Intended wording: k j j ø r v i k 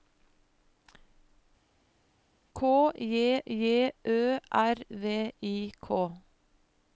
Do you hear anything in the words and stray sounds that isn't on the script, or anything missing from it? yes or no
no